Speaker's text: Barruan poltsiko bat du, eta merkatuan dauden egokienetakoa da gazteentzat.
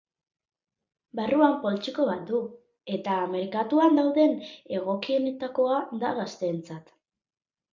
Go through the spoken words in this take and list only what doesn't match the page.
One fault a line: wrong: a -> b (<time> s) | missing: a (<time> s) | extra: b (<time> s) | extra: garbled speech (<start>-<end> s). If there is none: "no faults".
no faults